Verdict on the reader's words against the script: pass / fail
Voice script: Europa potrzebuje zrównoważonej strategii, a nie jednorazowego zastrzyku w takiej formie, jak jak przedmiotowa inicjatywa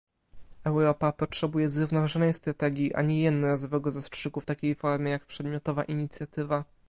fail